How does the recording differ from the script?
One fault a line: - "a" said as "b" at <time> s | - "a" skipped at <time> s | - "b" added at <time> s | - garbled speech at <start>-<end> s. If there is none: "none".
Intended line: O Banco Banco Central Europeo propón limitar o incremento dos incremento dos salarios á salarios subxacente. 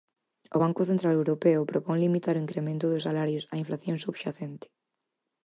- "Banco" skipped at 0.8 s
- "incremento dos" skipped at 3.1 s
- "salarios" said as "inflación" at 3.6 s